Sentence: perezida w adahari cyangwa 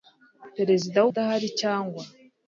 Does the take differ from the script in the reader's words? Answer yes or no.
no